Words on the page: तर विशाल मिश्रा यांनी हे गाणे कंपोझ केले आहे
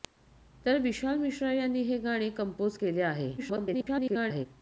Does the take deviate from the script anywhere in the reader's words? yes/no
yes